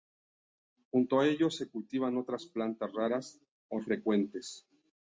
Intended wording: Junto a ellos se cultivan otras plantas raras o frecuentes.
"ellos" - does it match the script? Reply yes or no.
yes